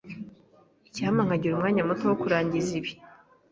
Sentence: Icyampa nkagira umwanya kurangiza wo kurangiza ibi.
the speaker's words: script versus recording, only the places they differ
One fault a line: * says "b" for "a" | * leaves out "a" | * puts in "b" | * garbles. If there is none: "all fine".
* says "muto" for "kurangiza"